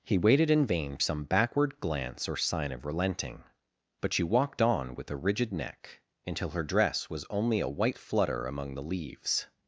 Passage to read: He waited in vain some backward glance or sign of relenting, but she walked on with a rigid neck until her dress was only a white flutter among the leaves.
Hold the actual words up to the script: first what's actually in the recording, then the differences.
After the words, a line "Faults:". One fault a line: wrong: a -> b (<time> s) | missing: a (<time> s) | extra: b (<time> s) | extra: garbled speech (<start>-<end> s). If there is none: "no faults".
He waited in vain some backward glance or sign of relenting, but she walked on with a rigid neck until her dress was only a white flutter among the leaves.
Faults:
no faults